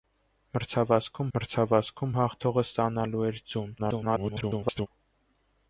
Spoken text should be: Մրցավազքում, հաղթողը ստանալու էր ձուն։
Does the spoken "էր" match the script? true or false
true